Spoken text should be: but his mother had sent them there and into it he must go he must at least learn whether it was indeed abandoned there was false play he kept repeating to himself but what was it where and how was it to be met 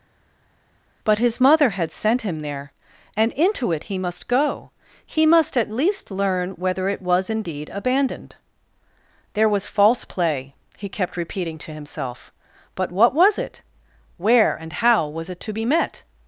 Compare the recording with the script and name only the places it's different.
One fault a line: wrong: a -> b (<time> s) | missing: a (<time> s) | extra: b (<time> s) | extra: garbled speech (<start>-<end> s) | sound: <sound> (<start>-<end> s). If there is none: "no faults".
wrong: them -> him (2.2 s)